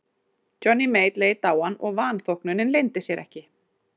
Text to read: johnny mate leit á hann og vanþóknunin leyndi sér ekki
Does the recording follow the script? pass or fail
pass